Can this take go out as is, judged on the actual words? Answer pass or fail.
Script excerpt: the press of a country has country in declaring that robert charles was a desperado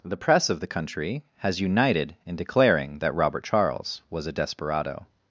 fail